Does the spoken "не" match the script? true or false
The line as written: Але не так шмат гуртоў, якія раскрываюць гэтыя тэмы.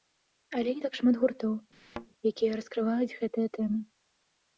true